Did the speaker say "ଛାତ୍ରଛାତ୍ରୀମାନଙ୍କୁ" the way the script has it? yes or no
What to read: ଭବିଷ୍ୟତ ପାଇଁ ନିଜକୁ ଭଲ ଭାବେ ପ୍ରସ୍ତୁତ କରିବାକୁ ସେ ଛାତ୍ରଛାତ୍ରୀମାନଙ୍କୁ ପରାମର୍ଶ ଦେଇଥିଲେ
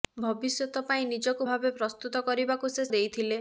no